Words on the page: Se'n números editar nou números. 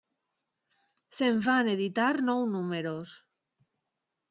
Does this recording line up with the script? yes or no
no